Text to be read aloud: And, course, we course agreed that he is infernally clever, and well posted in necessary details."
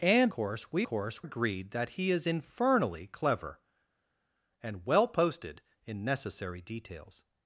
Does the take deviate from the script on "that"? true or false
false